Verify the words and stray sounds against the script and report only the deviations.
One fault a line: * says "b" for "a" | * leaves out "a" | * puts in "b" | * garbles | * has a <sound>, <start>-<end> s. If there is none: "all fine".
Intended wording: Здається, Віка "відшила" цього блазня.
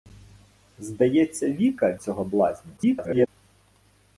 * leaves out "відшила"
* garbles